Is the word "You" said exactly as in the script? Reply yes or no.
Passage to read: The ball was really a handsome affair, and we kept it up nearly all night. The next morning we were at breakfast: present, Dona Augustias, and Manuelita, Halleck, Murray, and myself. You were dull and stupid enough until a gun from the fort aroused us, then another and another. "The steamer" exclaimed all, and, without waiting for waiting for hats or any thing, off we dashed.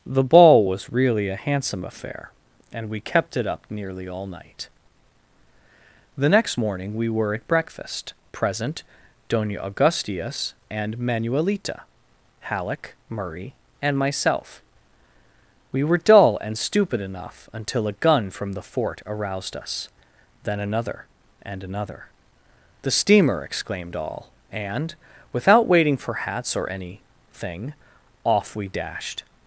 no